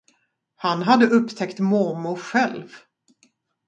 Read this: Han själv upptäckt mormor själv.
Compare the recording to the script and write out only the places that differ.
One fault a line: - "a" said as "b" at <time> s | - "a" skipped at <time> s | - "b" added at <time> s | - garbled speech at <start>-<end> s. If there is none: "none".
- "själv" said as "hade" at 0.8 s